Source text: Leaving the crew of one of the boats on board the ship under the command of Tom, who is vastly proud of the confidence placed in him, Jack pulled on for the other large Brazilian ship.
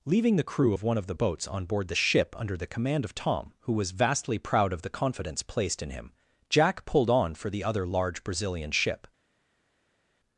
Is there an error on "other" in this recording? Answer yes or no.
no